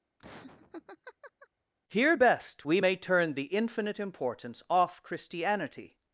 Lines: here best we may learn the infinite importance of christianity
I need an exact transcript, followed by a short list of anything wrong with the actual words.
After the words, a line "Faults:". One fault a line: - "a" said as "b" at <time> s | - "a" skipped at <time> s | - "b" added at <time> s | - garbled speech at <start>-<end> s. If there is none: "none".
here best we may turn the infinite importance off christianity
Faults:
- "learn" said as "turn" at 3.0 s
- "of" said as "off" at 4.7 s